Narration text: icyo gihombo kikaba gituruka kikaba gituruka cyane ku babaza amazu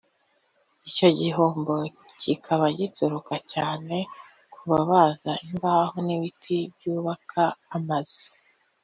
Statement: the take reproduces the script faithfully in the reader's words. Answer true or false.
false